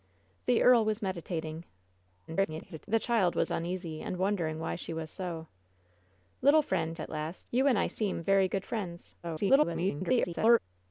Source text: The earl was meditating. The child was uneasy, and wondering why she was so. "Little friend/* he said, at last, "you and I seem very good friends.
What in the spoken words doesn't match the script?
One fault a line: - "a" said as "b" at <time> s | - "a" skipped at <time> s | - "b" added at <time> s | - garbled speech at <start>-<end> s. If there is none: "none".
- garbled speech at 2.3-2.9 s
- "he said" skipped at 7.0 s
- garbled speech at 9.2-10.6 s